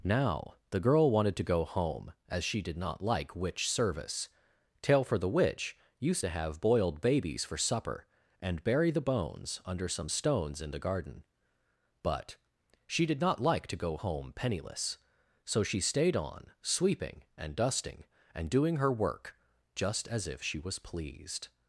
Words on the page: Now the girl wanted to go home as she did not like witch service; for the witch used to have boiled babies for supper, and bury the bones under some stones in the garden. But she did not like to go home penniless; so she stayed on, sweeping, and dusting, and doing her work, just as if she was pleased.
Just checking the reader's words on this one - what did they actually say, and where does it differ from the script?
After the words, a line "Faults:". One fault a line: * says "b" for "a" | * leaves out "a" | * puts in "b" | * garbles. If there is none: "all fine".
Now the girl wanted to go home as she did not like witch service; tail for the witch used to have boiled babies for supper, and bury the bones under some stones in the garden. But she did not like to go home penniless; so she stayed on, sweeping, and dusting, and doing her work, just as if she was pleased.
Faults:
* puts in "tail"